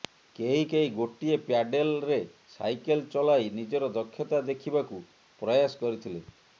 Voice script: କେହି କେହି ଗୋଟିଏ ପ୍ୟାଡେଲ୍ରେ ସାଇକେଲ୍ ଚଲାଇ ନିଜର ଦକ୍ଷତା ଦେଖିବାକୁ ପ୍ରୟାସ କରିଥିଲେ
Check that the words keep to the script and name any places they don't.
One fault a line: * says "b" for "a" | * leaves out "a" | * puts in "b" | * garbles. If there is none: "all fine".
all fine